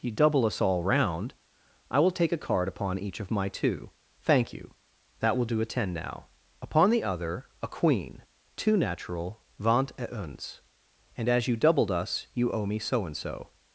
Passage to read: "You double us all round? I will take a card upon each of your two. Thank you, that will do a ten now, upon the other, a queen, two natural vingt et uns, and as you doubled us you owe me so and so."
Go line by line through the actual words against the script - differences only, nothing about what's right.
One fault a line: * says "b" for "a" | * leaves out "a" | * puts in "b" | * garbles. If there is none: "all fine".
* says "my" for "your"